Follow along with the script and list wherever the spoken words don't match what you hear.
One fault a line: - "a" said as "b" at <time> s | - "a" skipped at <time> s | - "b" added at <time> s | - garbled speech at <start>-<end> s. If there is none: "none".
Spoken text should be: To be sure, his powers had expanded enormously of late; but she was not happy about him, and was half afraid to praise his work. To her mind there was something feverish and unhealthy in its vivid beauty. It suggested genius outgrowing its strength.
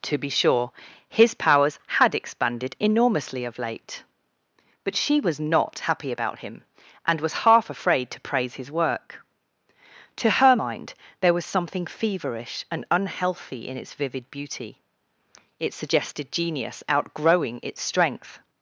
none